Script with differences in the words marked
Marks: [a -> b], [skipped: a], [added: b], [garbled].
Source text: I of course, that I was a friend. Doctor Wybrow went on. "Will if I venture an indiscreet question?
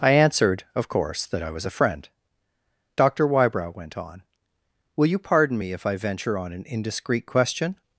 I [added: answered] of course, that I was a friend. Doctor Wybrow went on. "Will [added: you pardon me] if I venture [added: on] an indiscreet question?